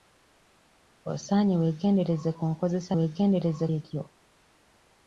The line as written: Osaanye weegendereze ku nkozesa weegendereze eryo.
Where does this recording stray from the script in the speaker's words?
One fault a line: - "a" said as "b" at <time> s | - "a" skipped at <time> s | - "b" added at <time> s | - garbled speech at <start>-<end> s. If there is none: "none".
none